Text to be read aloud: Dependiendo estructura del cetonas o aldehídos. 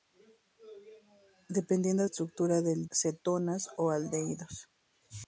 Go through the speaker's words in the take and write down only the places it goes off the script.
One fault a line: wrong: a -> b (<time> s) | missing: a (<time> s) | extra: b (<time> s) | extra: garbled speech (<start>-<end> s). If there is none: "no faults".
no faults